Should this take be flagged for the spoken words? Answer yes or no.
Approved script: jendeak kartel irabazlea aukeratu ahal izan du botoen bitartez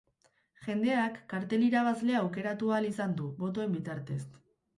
no